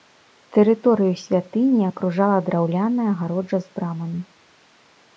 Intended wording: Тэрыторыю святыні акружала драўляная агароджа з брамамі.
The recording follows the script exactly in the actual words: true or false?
true